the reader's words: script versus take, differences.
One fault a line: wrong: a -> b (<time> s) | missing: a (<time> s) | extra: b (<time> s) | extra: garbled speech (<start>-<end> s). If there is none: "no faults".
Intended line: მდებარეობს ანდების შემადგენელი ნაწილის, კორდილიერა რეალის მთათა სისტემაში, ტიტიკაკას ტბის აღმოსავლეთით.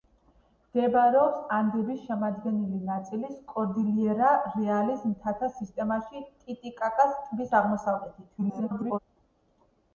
extra: garbled speech (8.4-9.0 s)